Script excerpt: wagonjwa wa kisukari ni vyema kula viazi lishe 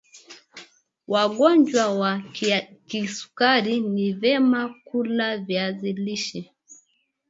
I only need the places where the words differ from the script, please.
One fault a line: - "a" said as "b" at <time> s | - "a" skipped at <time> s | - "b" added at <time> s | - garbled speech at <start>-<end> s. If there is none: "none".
none